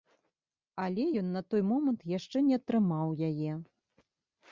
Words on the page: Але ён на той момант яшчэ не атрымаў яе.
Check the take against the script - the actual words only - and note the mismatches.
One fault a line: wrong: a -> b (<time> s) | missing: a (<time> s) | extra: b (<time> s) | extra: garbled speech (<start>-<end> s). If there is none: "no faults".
no faults